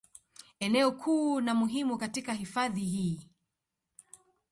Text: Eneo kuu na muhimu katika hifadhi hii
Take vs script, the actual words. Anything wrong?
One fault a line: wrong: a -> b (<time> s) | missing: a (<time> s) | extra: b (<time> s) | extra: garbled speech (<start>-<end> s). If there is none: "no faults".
no faults